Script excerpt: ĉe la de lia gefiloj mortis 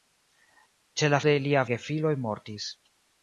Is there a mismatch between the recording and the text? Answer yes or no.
no